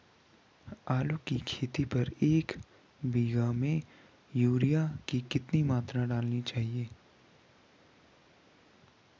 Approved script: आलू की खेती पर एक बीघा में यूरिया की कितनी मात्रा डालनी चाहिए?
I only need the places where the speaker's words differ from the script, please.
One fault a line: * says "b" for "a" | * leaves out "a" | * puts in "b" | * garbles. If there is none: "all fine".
all fine